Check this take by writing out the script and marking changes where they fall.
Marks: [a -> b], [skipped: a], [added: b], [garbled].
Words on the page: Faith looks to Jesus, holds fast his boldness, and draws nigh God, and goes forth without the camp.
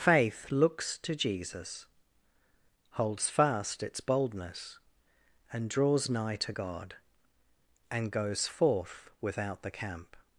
Faith looks to Jesus, holds fast [his -> its] boldness, and draws nigh [added: to] God, and goes forth without the camp.